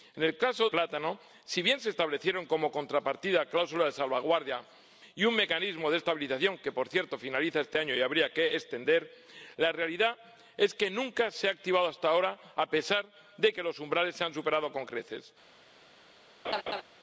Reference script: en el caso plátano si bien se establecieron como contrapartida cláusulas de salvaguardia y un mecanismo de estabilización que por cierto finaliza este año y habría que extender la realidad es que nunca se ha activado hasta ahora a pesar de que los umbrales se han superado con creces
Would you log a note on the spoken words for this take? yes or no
no